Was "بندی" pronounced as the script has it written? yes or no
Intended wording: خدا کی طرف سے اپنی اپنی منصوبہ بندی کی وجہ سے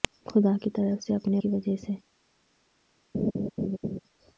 no